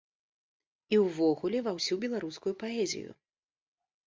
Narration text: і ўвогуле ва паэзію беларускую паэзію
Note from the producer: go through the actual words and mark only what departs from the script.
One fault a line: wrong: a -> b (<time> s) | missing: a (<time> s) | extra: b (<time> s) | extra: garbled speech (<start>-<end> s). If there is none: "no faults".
wrong: паэзію -> ўсю (1.8 s)